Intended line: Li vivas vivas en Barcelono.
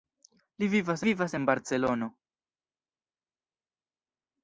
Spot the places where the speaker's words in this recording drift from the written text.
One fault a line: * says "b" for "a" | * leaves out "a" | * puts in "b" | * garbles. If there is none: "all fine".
all fine